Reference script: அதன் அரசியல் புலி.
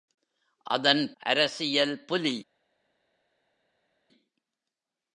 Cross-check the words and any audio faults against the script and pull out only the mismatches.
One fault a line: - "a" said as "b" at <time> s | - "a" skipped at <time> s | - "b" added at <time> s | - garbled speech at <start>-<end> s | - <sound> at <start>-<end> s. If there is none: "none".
none